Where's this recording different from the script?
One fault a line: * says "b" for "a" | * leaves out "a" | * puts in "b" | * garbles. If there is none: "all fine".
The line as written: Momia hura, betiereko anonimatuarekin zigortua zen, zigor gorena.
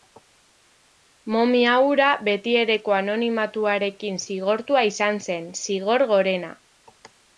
* puts in "izan"